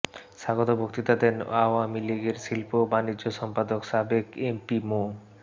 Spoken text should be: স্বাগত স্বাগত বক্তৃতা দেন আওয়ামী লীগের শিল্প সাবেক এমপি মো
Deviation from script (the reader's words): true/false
true